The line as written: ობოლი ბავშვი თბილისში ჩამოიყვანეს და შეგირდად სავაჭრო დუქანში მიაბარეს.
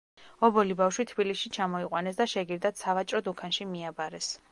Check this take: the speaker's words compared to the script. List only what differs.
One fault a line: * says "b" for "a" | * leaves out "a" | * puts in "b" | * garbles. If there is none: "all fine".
all fine